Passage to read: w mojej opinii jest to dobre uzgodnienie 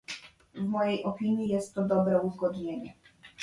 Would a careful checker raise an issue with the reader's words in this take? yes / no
no